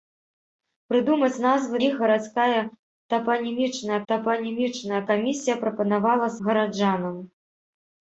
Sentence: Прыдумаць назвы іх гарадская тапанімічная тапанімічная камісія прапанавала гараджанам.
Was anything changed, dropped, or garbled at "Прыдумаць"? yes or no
no